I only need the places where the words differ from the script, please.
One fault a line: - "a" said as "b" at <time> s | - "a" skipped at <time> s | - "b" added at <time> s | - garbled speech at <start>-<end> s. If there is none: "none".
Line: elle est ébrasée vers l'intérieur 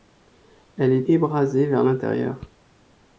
none